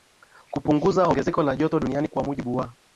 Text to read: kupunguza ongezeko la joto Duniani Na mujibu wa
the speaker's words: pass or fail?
fail